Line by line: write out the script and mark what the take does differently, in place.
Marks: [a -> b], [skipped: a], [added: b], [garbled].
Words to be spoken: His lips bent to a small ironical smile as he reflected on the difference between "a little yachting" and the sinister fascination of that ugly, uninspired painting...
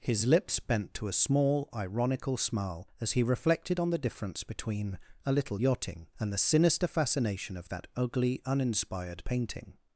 His lips bent to a small ironical smile as he reflected on the difference between "a little yachting" and the sinister fascination of that ugly, uninspired painting...